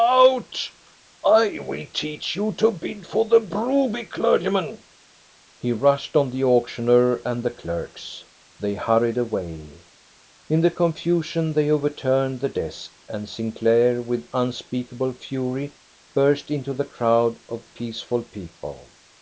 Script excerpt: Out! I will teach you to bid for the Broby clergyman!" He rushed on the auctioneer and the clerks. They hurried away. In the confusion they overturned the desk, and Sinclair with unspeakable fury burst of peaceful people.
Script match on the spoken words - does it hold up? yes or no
no